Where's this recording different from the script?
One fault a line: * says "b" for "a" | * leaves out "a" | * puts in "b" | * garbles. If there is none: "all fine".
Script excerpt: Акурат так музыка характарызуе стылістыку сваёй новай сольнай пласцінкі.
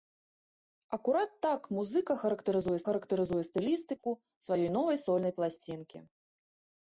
* puts in "характарызуе"